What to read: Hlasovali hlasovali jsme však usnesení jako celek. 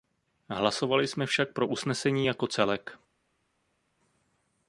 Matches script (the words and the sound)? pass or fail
fail